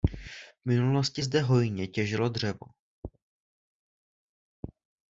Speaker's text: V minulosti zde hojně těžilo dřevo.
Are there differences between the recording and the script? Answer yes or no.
no